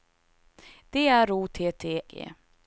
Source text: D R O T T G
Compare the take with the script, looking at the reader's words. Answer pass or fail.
pass